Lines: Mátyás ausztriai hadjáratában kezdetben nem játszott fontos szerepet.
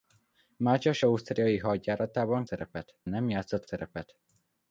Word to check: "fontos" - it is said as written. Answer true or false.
false